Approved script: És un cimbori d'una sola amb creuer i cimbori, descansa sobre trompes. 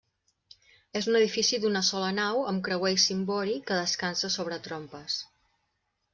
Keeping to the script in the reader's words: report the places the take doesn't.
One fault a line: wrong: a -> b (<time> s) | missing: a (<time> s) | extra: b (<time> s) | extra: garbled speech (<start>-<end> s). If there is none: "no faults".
wrong: cimbori -> edifici (1.2 s)
extra: nau (2.2 s)
extra: que (3.7 s)